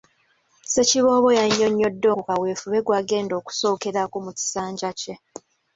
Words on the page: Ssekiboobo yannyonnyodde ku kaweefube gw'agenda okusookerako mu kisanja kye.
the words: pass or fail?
pass